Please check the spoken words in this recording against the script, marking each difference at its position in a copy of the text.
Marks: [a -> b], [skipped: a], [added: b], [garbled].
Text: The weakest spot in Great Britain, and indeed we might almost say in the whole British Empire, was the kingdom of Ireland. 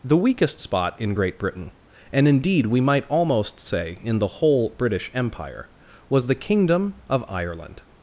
The weakest spot in Great Britain, and indeed we might almost say in the whole British Empire, was the kingdom of Ireland.